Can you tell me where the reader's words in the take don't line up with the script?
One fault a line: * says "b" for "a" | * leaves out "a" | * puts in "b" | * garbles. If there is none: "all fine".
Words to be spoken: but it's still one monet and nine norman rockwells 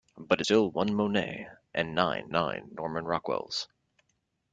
* leaves out "it's"
* puts in "nine"